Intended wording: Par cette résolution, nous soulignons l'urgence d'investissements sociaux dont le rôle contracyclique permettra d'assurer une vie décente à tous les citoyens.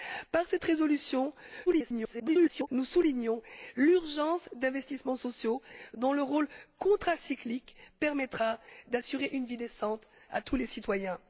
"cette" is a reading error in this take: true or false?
false